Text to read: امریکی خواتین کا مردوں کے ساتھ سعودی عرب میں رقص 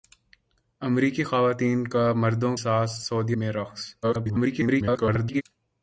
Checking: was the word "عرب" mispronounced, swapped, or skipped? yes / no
yes